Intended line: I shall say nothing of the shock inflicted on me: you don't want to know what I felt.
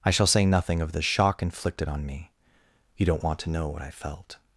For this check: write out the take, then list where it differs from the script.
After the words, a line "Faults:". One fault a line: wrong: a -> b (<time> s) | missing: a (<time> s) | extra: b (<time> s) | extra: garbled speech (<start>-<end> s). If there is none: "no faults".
I shall say nothing of the shock inflicted on me: you don't want to know what I felt.
Faults:
no faults